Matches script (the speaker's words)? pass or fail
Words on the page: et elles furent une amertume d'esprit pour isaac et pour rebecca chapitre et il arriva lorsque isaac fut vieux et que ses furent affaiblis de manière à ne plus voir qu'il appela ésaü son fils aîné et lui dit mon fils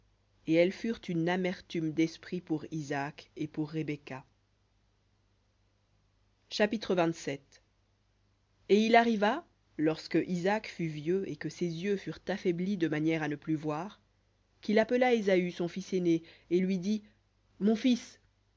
fail